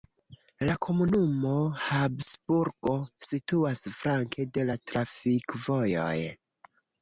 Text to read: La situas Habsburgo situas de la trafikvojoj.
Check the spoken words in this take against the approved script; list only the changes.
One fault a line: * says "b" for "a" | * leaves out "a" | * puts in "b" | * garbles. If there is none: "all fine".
* says "komunumo" for "situas"
* puts in "flanke"